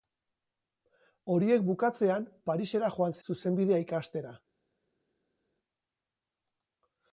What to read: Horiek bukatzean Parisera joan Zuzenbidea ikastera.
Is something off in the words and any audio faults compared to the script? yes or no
no